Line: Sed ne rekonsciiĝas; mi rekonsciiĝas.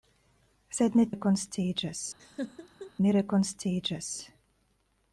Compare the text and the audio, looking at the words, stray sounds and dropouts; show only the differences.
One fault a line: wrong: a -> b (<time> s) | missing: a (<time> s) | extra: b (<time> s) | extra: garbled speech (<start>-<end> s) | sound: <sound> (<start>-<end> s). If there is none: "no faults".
sound: laugh (2.2-2.9 s)